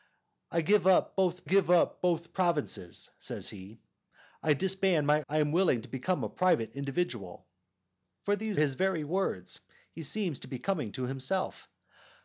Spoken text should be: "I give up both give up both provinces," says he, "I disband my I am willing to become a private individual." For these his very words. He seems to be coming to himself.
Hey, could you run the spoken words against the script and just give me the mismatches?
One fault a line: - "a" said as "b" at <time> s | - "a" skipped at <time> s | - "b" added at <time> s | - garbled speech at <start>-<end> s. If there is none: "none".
none